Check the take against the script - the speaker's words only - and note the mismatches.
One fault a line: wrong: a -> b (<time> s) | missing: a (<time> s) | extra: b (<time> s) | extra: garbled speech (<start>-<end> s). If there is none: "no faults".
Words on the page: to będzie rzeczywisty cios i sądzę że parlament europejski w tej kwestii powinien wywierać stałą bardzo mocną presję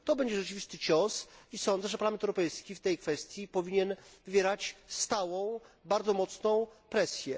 no faults